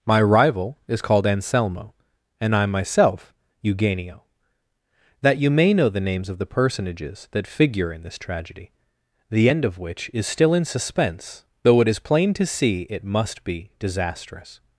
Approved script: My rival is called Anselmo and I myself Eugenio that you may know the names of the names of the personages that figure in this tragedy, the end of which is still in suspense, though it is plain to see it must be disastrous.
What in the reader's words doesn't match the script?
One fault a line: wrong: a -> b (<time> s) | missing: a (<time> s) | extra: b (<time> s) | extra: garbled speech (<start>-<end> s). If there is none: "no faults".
missing: names of the (6.5 s)